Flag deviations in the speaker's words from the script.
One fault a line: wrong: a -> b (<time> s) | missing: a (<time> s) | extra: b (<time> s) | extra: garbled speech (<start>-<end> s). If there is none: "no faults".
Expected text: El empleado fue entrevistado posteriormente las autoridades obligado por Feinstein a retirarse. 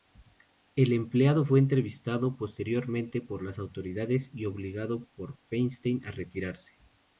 extra: por (3.2 s)
extra: y (4.3 s)